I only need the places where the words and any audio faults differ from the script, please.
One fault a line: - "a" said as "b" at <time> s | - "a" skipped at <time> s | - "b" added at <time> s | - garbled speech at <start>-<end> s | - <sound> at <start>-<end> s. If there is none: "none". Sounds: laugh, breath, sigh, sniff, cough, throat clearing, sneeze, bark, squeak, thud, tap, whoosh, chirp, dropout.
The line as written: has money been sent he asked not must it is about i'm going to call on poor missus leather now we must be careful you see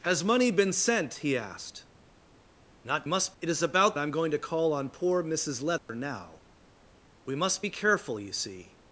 - dropout at 5.8-5.9 s